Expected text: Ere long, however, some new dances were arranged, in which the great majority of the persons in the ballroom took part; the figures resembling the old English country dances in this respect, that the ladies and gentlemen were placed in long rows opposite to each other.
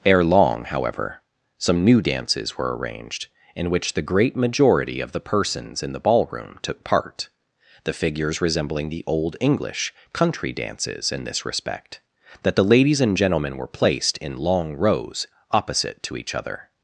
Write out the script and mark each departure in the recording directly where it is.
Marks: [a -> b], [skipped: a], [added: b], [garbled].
Ere long, however, some new dances were arranged, in which the great majority of the persons in the ballroom took part; the figures resembling the old English country dances in this respect, that the ladies and gentlemen were placed in long rows opposite to each other.